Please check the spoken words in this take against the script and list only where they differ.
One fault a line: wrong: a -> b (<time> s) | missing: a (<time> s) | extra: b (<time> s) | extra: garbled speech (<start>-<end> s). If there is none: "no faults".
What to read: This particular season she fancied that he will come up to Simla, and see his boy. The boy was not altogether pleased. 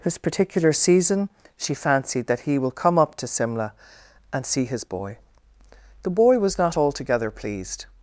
no faults